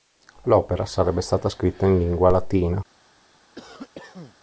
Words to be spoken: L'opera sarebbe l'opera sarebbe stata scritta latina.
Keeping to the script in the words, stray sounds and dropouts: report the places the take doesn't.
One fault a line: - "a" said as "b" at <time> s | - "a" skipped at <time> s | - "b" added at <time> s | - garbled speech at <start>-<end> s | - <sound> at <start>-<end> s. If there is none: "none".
- "l'opera sarebbe stata scritta" said as "stata scritta in lingua" at 1.2 s
- cough at 3.6-4.4 s